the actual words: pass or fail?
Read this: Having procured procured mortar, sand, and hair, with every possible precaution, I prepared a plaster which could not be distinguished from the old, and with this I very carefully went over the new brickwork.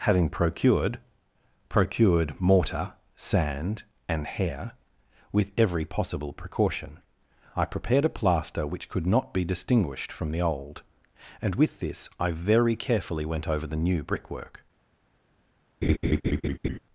pass